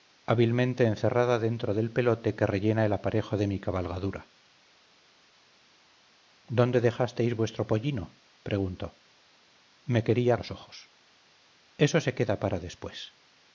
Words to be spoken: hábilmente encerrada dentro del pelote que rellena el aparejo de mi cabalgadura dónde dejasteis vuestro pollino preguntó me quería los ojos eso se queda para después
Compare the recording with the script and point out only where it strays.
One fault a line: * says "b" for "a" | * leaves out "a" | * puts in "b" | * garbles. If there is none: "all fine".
all fine